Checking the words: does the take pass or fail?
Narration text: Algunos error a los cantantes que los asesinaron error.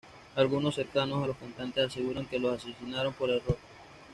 fail